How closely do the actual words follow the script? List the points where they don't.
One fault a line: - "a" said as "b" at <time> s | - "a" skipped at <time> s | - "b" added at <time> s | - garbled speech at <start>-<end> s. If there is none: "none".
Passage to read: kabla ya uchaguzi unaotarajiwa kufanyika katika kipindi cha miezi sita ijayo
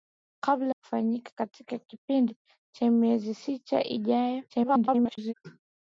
- "ya uchaguzi unaotarajiwa" skipped at 0.8 s
- garbled speech at 4.5-5.3 s